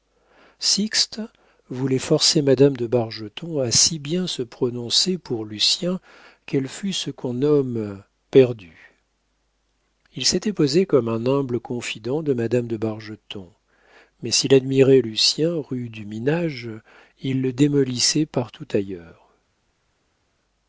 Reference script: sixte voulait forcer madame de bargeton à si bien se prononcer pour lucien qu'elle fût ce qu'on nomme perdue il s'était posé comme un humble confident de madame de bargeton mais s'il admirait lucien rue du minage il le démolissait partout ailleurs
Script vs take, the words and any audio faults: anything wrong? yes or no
no